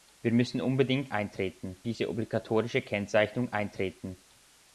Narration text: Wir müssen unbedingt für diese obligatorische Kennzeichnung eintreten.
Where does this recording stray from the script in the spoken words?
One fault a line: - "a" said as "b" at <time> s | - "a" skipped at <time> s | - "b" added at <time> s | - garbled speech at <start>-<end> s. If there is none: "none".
- "für" said as "eintreten" at 1.1 s